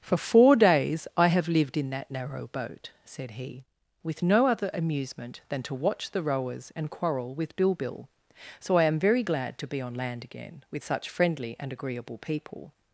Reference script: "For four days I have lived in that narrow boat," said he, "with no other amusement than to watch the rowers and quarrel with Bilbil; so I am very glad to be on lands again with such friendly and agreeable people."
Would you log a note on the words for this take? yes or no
yes